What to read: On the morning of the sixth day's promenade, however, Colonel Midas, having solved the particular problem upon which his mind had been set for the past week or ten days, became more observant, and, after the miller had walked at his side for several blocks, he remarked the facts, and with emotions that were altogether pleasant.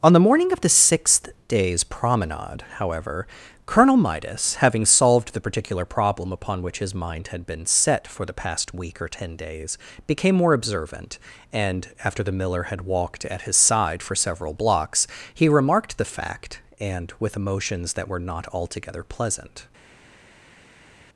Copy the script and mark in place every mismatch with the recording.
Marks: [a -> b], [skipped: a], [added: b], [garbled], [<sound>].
On the morning of the sixth day's promenade, however, Colonel Midas, having solved the particular problem upon which his mind had been set for the past week or ten days, became more observant, and, after the miller had walked at his side for several blocks, he remarked the [facts, -> fact] and with emotions that were [added: not] altogether pleasant.